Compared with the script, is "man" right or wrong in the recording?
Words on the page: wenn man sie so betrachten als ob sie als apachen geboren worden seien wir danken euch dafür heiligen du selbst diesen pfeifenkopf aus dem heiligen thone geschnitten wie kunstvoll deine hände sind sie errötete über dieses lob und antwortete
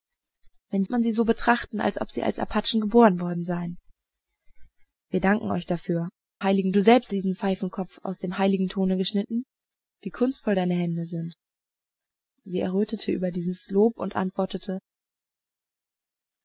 right